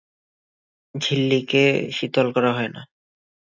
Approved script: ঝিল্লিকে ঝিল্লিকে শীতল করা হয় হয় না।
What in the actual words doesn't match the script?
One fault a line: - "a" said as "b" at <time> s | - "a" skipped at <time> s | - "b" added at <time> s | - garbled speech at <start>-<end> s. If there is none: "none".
- "ঝিল্লিকে" skipped at 1.6 s
- "হয়" skipped at 2.7 s